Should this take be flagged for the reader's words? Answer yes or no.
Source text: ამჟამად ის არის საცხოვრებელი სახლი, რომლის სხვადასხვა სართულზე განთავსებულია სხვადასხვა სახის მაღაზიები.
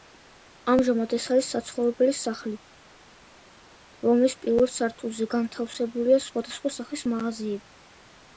yes